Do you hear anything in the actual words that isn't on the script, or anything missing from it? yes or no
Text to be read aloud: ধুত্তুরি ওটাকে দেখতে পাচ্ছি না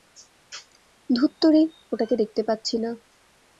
no